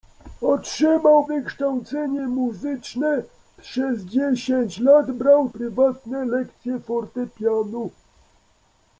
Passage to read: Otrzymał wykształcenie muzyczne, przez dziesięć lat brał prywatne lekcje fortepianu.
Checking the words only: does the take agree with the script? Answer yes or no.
yes